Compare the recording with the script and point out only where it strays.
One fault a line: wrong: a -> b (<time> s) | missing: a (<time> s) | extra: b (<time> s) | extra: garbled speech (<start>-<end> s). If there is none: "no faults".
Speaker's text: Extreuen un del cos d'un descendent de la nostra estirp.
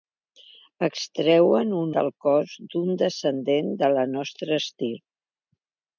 no faults